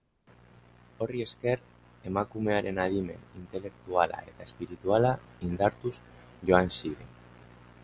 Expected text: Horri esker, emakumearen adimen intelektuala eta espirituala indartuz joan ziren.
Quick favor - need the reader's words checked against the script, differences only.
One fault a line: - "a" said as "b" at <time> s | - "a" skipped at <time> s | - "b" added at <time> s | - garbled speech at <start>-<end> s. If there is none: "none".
none